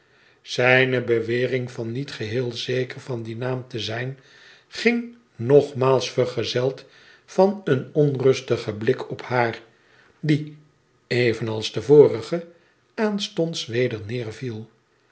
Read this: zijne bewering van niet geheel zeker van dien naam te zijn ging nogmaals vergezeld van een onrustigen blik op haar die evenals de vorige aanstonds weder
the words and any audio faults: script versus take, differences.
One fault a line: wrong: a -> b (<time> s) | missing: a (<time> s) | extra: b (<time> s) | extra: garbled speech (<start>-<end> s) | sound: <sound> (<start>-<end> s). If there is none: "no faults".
no faults